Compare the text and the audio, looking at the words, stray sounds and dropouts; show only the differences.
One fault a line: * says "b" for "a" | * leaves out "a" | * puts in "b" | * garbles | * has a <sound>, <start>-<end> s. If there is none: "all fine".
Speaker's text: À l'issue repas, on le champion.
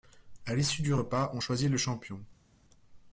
* puts in "du"
* puts in "choisit"